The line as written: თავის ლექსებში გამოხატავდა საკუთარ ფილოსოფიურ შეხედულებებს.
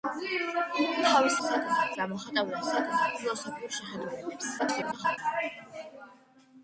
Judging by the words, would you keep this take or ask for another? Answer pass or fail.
fail